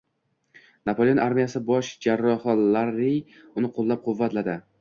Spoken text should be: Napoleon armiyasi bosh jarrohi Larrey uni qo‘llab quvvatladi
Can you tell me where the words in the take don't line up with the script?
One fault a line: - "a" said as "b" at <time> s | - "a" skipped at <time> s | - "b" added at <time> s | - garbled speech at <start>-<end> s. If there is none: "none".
none